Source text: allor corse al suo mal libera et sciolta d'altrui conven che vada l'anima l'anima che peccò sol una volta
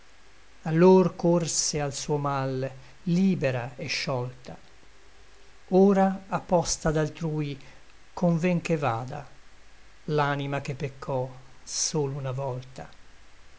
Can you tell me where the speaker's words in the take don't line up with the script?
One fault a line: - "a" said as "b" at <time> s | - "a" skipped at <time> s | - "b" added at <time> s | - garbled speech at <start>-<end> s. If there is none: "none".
- "ora a posta" added at 5.7 s
- "l'anima" skipped at 10.6 s